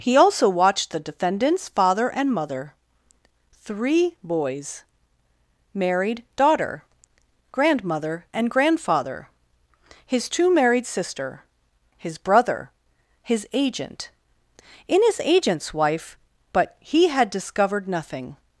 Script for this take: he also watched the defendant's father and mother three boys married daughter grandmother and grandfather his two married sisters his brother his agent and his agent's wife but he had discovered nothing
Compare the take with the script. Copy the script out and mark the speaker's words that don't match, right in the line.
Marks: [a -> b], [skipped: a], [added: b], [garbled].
he also watched the defendant's father and mother three boys married daughter grandmother and grandfather his two married [sisters -> sister] his brother his agent [and -> in] his agent's wife but he had discovered nothing